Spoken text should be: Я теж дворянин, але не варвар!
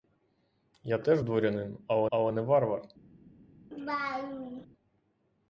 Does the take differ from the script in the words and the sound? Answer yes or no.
yes